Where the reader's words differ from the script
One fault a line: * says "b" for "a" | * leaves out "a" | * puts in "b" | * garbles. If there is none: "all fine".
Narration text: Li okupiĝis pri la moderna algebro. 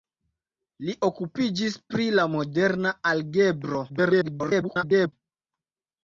* garbles